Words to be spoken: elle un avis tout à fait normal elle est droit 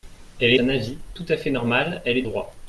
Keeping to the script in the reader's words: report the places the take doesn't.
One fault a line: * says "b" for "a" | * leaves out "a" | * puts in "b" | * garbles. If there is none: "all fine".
all fine